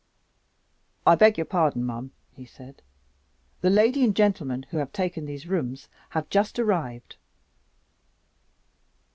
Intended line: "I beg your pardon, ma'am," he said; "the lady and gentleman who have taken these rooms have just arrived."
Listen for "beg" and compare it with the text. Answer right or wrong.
right